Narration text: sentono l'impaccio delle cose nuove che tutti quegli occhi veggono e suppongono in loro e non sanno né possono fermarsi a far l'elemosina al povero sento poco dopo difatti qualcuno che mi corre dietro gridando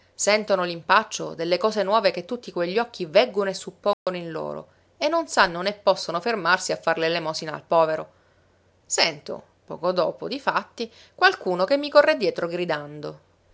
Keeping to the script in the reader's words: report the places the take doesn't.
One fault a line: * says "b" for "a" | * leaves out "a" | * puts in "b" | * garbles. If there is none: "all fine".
all fine